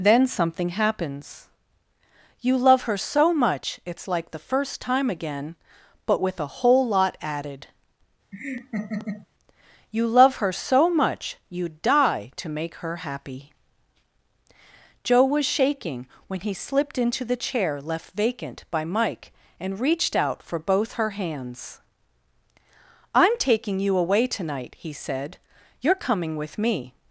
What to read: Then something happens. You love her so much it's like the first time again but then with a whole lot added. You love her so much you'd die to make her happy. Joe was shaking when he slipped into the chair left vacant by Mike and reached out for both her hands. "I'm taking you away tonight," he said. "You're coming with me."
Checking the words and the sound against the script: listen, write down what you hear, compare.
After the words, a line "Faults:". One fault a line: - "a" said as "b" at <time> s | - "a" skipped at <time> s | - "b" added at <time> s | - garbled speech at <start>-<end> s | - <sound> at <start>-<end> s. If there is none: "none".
Then something happens. You love her so much it's like the first time again but with a whole lot added. You love her so much you'd die to make her happy. Joe was shaking when he slipped into the chair left vacant by Mike and reached out for both her hands. "I'm taking you away tonight," he said. "You're coming with me."
Faults:
- "then" skipped at 6.2 s
- laugh at 8.3-9.3 s